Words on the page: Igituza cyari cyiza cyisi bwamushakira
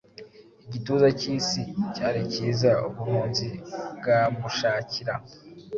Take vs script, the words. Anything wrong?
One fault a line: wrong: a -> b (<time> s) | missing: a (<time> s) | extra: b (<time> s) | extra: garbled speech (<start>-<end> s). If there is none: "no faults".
extra: cyisi (1.2 s)
wrong: cyisi -> ubuhunzi (2.9 s)